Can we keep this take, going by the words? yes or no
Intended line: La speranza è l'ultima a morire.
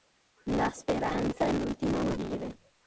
yes